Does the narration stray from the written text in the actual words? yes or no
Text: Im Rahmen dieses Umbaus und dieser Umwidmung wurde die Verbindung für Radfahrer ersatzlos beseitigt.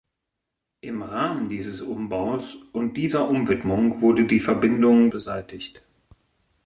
yes